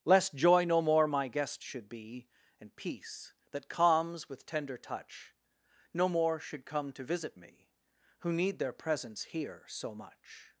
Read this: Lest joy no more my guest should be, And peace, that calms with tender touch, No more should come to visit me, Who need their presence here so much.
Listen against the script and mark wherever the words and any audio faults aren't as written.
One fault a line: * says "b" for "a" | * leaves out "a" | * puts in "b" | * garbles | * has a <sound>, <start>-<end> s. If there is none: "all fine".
all fine